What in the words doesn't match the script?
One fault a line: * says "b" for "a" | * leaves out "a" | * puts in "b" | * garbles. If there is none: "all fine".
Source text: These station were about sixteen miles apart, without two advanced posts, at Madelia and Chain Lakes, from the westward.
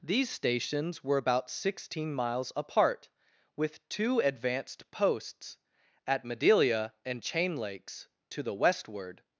* says "stations" for "station"
* says "with" for "without"
* says "to" for "from"